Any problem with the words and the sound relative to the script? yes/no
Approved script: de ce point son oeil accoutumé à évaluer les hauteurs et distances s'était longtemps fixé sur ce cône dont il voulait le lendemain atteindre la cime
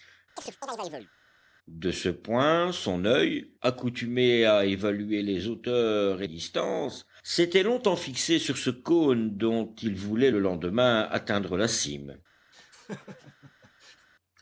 yes